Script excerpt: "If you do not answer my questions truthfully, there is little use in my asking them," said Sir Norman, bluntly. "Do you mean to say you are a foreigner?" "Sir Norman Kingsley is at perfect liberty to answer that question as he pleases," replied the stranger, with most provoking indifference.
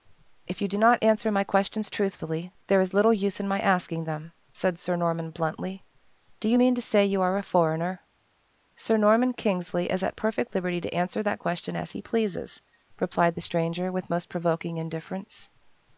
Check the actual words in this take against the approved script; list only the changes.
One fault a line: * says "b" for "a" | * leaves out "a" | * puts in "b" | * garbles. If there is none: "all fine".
all fine